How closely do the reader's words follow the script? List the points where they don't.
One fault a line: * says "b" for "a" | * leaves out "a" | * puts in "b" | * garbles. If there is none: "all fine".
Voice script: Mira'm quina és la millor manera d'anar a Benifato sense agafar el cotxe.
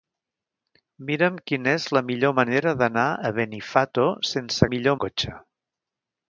* says "millor" for "agafar"